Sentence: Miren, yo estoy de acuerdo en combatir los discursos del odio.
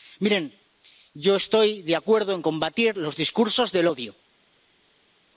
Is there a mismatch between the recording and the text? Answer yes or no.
no